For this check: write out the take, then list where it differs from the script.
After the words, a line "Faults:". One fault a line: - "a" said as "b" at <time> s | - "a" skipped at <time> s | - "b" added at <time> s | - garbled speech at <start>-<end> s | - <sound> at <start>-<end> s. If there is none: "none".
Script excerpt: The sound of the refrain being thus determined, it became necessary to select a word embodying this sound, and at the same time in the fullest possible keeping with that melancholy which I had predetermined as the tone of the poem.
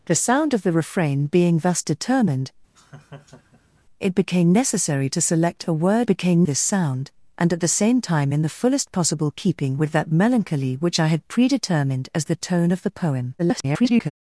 The sound of the refrain being thus determined, it became necessary to select a word became this sound, and at the same time in the fullest possible keeping with that melancholy which I had predetermined as the tone of the poem. [garbled]
Faults:
- laugh at 2.7-3.8 s
- "embodying" said as "became" at 6.0 s
- garbled speech at 13.4-14.1 s